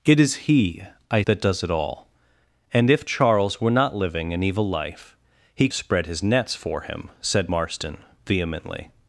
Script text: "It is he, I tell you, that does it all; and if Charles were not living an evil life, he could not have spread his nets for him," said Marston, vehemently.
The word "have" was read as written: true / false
false